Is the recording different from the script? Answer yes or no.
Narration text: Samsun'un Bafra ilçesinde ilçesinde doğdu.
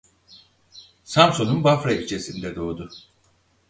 yes